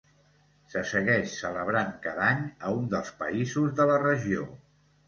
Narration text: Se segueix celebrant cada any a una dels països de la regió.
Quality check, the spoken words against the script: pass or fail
fail